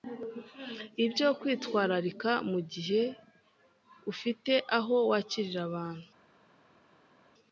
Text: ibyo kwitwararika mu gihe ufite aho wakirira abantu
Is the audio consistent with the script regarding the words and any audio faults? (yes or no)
yes